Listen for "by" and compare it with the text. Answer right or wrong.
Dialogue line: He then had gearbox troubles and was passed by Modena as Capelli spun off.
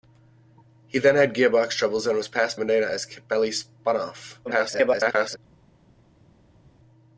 wrong